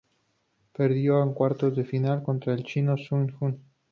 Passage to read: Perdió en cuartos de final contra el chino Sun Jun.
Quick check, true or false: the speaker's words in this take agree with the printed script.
true